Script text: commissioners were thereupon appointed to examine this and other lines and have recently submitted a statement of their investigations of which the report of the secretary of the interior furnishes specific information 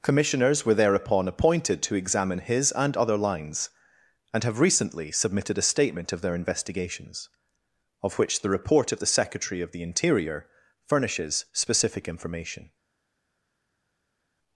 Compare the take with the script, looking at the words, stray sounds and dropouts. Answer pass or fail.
fail